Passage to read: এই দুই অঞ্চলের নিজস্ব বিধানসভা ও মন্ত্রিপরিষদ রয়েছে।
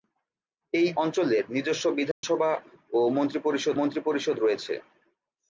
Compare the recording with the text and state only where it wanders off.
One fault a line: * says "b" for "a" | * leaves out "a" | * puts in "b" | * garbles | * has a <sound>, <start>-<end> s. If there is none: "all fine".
* leaves out "দুই"
* has a dropout, 2.1-2.2 s
* puts in "মন্ত্রিপরিষদ"